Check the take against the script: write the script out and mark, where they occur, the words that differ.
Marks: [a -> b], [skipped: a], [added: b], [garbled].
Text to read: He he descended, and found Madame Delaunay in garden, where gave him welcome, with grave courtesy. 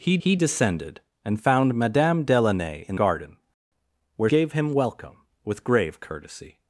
He he descended, and found Madame Delaunay in garden, where gave him welcome, with grave courtesy.